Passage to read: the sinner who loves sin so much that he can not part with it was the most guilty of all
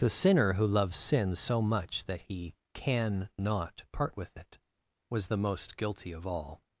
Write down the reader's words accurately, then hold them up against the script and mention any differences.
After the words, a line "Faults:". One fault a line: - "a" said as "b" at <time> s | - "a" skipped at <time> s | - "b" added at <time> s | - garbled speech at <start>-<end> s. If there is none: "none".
the sinner who loves sin so much that he can not part with it was the most guilty of all
Faults:
none